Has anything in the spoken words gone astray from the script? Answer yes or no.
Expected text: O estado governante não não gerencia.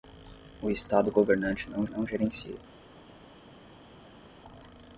no